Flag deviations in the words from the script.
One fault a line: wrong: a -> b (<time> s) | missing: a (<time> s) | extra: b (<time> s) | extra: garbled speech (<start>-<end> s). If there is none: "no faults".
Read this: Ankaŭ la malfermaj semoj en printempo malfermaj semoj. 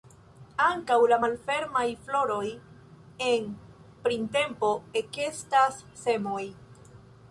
wrong: semoj -> floroj (2.1 s)
wrong: malfermaj -> ekestas (5.0 s)